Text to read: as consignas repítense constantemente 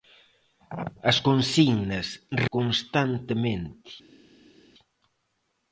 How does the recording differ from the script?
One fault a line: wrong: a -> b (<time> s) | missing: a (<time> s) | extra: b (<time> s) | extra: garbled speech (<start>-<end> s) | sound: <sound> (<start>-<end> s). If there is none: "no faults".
missing: repítense (2.1 s)